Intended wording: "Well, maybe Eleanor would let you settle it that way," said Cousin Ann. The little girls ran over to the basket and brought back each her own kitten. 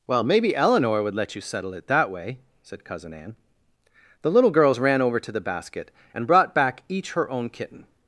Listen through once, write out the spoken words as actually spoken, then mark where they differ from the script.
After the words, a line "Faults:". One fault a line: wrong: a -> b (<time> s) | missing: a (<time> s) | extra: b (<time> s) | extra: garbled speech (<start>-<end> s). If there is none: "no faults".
"Well, maybe Eleanor would let you settle it that way," said Cousin Ann. The little girls ran over to the basket and brought back each her own kitten.
Faults:
no faults